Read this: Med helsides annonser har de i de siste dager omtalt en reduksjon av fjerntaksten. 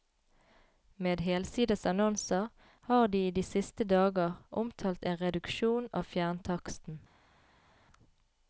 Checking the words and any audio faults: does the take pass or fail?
pass